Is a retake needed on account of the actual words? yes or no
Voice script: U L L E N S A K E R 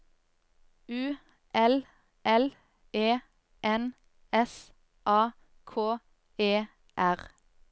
no